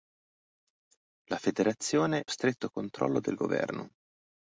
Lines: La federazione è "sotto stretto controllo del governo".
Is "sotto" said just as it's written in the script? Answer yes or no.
no